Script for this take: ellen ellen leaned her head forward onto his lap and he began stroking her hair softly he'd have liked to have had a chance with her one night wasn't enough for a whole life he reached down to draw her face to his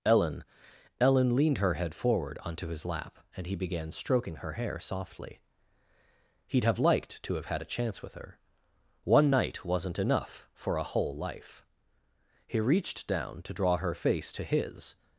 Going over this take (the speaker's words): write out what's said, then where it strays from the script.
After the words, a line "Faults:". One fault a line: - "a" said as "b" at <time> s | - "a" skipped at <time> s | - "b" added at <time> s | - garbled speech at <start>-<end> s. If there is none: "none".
ellen ellen leaned her head forward onto his lap and he began stroking her hair softly he'd have liked to have had a chance with her one night wasn't enough for a whole life he reached down to draw her face to his
Faults:
none